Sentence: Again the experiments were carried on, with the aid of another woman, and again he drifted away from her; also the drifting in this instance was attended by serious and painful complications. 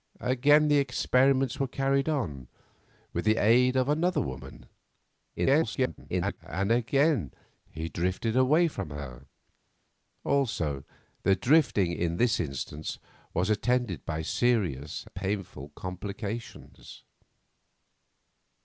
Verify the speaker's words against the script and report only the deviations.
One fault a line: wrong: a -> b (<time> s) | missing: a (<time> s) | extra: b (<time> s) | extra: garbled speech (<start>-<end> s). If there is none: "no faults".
extra: garbled speech (5.4-6.4 s)
missing: and (15.0 s)